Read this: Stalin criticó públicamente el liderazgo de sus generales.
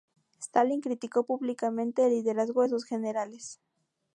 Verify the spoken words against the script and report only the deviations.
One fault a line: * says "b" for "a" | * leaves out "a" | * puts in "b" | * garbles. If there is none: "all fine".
all fine